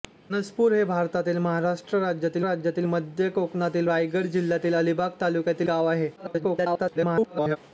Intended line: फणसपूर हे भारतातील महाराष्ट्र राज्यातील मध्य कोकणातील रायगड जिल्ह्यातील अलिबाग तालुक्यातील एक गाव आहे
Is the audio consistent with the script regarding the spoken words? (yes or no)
no